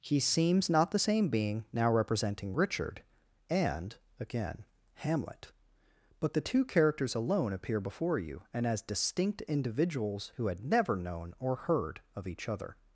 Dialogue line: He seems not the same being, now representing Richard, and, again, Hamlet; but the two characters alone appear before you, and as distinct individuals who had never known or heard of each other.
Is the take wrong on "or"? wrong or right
right